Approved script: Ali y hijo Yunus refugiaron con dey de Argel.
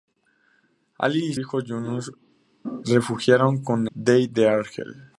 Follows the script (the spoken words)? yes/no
yes